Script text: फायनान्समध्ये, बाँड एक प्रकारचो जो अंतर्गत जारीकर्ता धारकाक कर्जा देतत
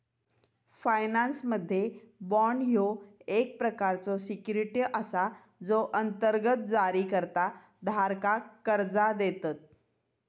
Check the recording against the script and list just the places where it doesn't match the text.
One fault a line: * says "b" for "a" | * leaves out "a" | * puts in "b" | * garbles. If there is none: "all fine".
* puts in "ह्यो"
* puts in "सिक्युरिटी असा"